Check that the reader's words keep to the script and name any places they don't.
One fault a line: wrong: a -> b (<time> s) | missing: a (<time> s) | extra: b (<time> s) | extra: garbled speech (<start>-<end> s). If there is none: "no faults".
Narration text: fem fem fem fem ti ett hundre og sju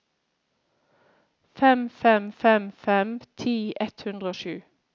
no faults